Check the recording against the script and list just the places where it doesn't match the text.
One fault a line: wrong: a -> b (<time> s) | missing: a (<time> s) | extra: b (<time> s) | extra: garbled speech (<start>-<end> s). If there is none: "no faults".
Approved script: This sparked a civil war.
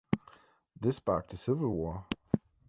no faults